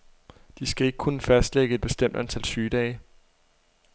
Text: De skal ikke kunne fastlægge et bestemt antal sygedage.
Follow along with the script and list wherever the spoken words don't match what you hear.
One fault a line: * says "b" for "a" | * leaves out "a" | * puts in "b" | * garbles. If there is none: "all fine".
all fine